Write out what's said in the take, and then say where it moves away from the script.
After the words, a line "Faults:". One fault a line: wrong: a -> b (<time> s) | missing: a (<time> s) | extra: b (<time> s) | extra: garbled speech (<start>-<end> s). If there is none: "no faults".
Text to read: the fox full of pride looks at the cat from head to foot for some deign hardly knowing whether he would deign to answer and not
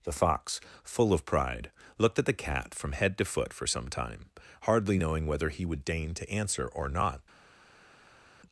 the fox full of pride looked at the cat from head to foot for some time hardly knowing whether he would deign to answer or not
Faults:
wrong: looks -> looked (2.0 s)
wrong: deign -> time (3.9 s)
wrong: and -> or (6.6 s)